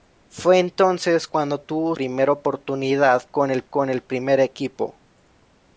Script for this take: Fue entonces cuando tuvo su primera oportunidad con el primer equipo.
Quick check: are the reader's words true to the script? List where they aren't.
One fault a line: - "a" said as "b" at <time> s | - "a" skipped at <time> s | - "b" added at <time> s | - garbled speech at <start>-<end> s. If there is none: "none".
- "su" skipped at 1.9 s
- "con el" added at 3.6 s